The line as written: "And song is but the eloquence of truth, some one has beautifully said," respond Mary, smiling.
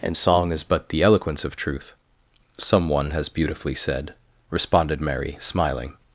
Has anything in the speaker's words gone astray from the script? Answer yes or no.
yes